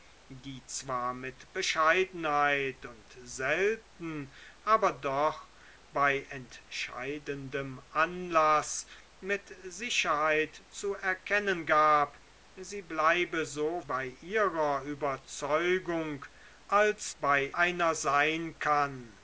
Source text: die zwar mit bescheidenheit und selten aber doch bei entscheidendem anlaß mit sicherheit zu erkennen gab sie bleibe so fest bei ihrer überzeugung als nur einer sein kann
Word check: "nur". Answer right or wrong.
wrong